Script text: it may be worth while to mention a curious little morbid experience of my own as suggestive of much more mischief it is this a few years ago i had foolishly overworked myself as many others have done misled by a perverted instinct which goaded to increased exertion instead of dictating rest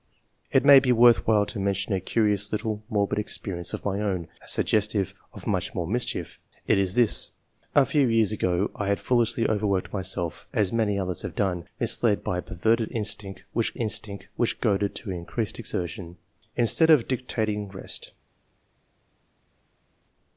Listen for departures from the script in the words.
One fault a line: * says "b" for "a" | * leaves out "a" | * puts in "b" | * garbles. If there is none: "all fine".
* puts in "instinct which"